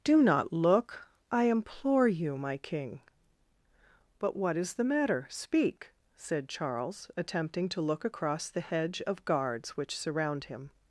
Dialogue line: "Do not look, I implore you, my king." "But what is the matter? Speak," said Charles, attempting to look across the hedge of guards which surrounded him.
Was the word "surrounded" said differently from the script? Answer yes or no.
yes